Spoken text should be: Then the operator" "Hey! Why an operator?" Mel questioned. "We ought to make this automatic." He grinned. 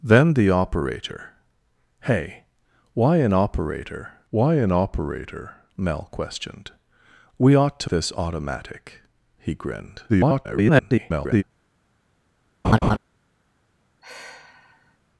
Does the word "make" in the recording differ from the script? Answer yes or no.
yes